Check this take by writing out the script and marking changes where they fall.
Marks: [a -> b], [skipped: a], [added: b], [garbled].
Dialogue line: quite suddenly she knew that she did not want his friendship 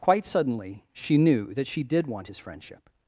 quite suddenly she knew that she did [skipped: not] want his friendship